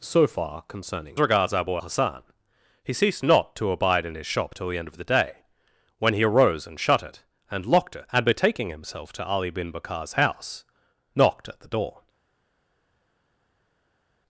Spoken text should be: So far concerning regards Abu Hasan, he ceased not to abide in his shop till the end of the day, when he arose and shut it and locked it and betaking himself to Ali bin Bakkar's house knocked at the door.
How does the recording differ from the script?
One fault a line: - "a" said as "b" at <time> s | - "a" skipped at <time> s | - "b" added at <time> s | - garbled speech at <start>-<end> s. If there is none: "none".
none